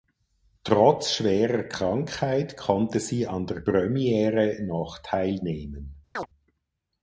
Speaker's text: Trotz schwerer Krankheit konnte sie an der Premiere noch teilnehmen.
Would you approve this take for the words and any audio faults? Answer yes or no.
no